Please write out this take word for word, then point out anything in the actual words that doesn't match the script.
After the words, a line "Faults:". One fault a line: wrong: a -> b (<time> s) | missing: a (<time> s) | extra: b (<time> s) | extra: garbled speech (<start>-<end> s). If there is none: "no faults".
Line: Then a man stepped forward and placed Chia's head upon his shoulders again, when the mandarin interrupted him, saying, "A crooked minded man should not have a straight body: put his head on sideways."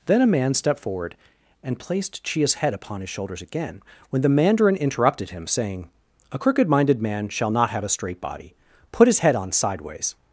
Then a man stepped forward and placed Chia's head upon his shoulders again, when the mandarin interrupted him, saying, "A crooked minded man shall not have a straight body: put his head on sideways."
Faults:
wrong: should -> shall (7.3 s)